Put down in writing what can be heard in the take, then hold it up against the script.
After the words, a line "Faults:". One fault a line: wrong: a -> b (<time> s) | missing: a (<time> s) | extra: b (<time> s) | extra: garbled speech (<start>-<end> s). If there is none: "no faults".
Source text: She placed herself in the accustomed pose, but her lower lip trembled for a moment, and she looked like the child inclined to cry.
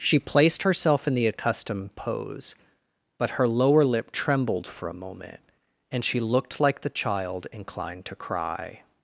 She placed herself in the accustomed pose, but her lower lip trembled for a moment, and she looked like the child inclined to cry.
Faults:
no faults